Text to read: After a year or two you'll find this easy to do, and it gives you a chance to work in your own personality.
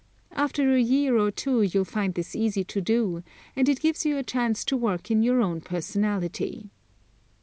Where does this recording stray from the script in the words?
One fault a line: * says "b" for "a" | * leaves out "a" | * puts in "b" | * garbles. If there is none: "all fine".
all fine